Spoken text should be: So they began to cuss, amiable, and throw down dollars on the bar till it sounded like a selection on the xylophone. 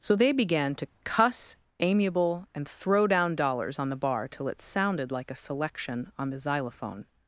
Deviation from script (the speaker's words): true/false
false